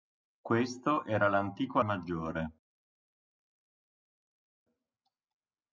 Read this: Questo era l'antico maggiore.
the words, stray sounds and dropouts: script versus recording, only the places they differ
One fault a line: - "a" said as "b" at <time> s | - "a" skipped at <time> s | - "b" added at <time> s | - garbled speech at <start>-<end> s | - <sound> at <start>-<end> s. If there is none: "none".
none